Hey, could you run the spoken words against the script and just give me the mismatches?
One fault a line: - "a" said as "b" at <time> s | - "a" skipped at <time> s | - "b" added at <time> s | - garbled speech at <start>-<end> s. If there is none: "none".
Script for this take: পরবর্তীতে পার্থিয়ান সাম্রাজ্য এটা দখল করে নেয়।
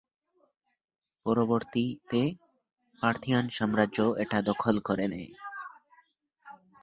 none